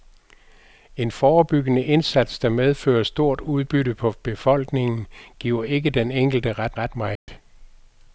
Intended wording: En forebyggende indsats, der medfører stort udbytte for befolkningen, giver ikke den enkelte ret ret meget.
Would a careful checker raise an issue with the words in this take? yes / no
no